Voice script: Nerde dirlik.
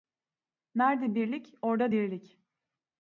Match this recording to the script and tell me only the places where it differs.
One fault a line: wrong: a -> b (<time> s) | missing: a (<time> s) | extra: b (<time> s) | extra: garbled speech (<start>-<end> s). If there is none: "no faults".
extra: birlik orda (1.1 s)